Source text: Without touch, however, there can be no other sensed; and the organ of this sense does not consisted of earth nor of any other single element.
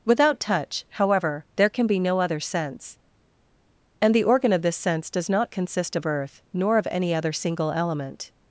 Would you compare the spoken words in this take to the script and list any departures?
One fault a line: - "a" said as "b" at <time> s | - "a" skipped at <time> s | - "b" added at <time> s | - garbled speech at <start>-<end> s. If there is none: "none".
- "sensed" said as "sense" at 2.4 s
- "consisted" said as "consist" at 5.5 s